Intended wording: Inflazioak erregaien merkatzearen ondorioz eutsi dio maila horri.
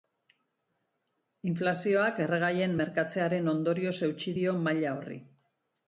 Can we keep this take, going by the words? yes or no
yes